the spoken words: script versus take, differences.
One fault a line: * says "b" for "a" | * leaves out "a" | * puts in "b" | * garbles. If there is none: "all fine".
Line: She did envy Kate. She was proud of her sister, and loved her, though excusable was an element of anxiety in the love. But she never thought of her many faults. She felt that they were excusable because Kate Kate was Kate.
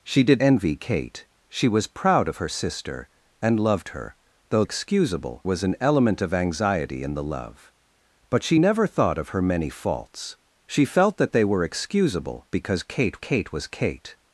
all fine